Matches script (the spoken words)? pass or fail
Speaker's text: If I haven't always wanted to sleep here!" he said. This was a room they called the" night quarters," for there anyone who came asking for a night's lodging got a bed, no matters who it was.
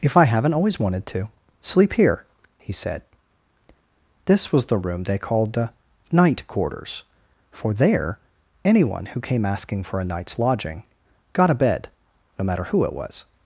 fail